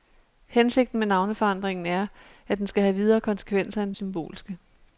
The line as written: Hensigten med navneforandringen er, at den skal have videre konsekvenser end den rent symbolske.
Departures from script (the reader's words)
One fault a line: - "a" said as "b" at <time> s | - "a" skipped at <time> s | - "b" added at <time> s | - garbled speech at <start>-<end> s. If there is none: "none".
- "den rent" skipped at 4.0 s